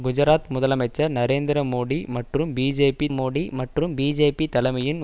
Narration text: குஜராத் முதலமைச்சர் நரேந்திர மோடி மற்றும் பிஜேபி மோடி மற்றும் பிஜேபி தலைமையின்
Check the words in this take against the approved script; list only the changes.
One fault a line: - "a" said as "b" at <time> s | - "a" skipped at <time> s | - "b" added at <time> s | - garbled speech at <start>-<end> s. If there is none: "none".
none